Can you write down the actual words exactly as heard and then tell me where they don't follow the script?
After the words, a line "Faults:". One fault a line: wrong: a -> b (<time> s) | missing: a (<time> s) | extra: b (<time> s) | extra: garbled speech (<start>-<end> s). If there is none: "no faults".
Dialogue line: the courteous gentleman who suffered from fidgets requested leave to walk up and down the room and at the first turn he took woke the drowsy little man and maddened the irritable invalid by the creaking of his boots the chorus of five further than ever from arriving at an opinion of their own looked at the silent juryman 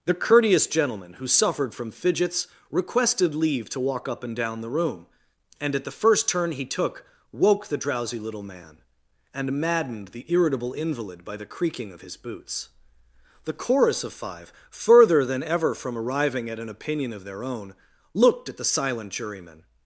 the courteous gentleman who suffered from fidgets requested leave to walk up and down the room and at the first turn he took woke the drowsy little man and maddened the irritable invalid by the creaking of his boots the chorus of five further than ever from arriving at an opinion of their own looked at the silent juryman
Faults:
no faults